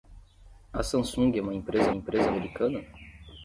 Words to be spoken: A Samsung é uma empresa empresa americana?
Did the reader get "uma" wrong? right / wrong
right